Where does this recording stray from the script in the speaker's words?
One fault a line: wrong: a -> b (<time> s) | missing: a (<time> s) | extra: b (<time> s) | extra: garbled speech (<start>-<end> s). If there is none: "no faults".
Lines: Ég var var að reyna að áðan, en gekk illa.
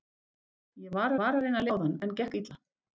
no faults